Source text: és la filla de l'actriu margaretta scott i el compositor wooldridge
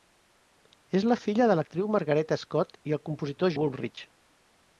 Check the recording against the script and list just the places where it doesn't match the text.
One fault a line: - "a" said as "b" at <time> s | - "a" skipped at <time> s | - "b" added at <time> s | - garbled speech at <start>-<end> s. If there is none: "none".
none